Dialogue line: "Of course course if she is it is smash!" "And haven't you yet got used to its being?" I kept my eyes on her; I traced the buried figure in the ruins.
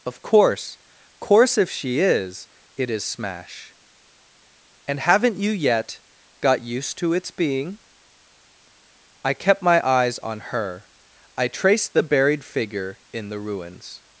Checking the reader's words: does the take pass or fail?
pass